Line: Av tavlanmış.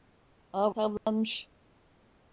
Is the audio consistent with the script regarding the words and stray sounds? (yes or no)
no